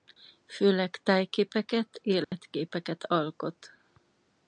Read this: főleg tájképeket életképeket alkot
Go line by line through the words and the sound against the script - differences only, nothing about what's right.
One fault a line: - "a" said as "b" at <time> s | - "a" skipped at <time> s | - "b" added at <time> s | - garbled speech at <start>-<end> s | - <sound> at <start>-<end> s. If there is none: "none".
- dropout at 2.2-2.3 s